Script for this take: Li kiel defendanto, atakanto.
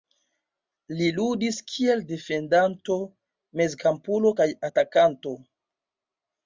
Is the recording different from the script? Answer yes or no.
yes